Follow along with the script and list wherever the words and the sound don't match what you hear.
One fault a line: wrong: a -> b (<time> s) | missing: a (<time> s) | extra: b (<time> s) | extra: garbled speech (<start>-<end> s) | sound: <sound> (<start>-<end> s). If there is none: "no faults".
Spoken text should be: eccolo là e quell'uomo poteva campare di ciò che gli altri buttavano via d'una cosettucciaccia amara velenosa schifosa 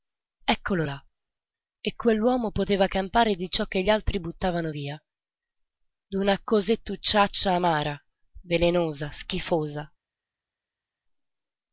no faults